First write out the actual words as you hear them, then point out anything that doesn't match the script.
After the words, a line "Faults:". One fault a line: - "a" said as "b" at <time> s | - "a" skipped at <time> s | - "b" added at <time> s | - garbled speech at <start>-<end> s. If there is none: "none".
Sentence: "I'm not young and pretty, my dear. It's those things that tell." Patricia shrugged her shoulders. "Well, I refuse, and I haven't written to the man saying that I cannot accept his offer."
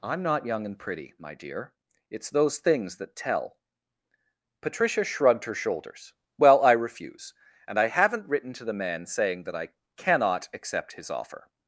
"I'm not young and pretty, my dear. It's those things that tell." Patricia shrugged her shoulders. "Well, I refuse, and I haven't written to the man saying that I cannot accept his offer."
Faults:
none